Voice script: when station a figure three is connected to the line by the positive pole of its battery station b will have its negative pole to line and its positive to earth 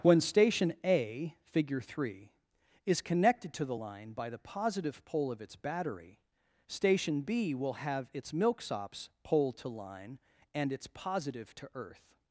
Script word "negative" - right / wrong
wrong